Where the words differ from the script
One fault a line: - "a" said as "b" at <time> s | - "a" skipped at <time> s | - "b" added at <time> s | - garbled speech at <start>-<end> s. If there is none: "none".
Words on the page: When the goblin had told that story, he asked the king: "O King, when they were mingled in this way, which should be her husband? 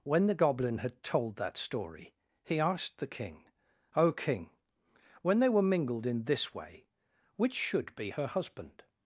none